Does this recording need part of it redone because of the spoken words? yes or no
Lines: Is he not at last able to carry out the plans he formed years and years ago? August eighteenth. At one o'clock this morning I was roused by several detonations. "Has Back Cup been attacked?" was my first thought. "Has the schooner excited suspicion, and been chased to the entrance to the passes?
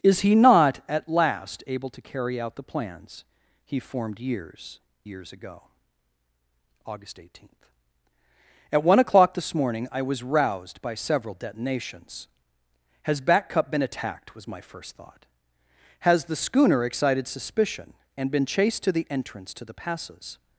yes